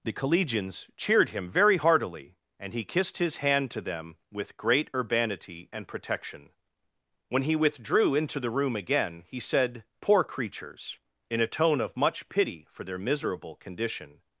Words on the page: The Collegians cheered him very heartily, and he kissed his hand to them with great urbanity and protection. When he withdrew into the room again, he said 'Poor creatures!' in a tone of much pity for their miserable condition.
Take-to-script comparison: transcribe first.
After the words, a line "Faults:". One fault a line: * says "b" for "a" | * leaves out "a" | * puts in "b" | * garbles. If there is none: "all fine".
The Collegians cheered him very heartily, and he kissed his hand to them with great urbanity and protection. When he withdrew into the room again, he said 'Poor creatures!' in a tone of much pity for their miserable condition.
Faults:
all fine